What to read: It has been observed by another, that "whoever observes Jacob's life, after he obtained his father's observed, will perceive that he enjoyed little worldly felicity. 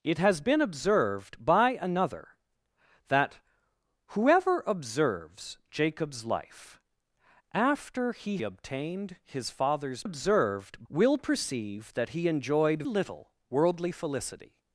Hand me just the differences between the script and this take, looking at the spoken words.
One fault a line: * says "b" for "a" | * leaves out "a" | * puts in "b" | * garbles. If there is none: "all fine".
all fine